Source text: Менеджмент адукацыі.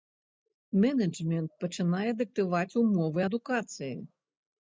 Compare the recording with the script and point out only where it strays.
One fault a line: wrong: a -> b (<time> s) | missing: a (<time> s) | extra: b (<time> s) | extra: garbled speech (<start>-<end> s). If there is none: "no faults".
extra: пачынае дыктаваць умовы (1.6 s)